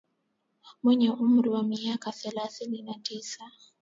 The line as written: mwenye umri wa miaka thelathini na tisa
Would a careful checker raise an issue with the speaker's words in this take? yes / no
no